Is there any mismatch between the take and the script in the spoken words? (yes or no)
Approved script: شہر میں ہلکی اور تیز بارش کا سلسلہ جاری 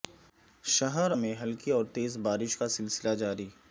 no